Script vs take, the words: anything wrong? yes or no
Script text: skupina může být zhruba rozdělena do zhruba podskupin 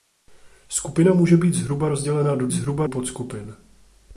no